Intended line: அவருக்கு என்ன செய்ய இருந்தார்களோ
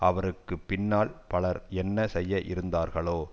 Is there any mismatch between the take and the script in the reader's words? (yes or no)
yes